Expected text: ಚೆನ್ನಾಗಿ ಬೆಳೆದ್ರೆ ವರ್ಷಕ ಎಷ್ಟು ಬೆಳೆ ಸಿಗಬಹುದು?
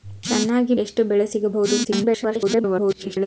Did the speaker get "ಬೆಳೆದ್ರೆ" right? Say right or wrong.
wrong